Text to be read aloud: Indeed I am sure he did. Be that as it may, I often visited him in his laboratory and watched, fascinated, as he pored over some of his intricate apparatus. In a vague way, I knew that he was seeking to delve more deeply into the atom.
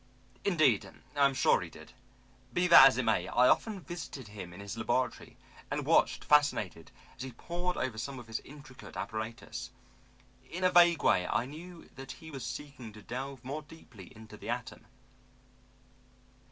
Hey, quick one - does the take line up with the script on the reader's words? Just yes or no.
yes